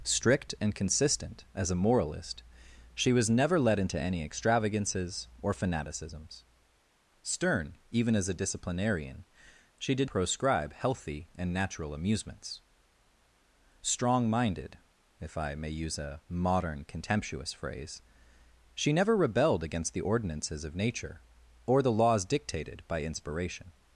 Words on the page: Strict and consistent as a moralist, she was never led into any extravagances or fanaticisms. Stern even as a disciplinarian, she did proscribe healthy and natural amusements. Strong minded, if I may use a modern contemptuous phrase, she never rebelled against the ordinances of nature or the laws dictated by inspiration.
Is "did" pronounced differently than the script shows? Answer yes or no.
no